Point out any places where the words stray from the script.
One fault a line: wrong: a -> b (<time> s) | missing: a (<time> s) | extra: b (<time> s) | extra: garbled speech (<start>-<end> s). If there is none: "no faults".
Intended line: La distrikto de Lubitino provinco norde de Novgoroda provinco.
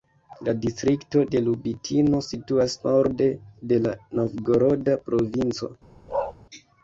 wrong: provinco -> situas (2.3 s)
extra: la (3.9 s)